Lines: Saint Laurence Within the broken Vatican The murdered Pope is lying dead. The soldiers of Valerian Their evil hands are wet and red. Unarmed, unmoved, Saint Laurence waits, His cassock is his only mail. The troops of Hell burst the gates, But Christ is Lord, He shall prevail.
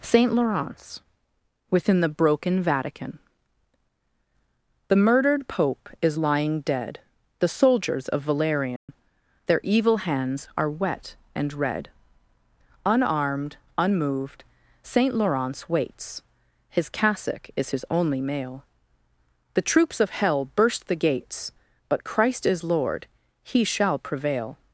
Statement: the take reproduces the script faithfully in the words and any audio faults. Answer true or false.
false